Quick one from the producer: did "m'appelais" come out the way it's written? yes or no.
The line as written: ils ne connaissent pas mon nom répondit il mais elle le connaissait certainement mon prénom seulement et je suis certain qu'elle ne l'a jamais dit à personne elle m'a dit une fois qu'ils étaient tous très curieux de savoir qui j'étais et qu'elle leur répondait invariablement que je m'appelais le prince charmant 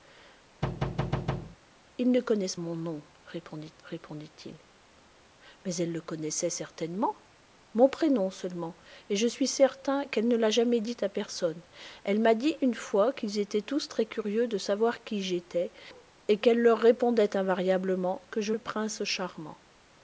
no